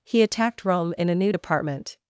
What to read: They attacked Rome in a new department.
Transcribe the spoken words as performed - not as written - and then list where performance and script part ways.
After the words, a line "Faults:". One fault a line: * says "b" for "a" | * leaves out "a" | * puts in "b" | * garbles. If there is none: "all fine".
He attacked Rome in a new department.
Faults:
* says "He" for "They"